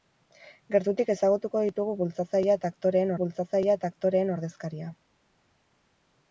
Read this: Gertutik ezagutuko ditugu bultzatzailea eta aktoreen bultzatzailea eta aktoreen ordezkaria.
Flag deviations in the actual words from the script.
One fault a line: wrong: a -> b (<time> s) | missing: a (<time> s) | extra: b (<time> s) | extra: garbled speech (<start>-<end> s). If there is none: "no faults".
no faults